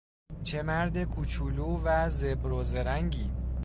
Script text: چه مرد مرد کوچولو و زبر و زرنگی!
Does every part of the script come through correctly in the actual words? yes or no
no